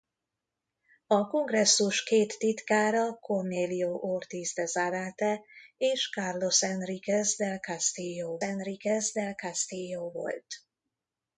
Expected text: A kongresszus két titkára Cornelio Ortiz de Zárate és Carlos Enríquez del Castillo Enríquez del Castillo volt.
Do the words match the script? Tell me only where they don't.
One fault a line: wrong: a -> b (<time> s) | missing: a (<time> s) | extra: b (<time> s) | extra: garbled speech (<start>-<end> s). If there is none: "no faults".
no faults